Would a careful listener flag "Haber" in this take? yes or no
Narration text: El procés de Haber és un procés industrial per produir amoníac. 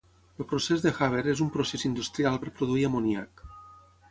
no